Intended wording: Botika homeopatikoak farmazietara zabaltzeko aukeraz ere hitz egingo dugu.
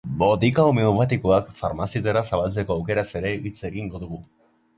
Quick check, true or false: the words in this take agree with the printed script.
true